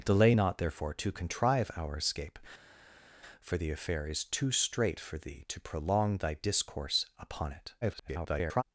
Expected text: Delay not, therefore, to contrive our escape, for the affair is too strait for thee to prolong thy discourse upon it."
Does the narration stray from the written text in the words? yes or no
yes